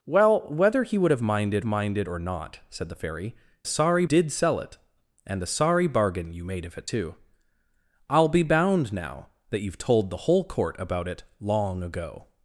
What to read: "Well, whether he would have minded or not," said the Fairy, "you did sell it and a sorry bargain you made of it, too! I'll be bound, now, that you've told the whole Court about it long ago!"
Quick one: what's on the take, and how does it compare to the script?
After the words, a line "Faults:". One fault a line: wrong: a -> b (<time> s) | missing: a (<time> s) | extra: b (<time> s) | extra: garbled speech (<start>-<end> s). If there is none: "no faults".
"Well, whether he would have minded minded or not," said the Fairy, "sorry did sell it and a sorry bargain you made of it, too! I'll be bound, now, that you've told the whole Court about it long ago!"
Faults:
extra: minded (1.6 s)
wrong: you -> sorry (3.6 s)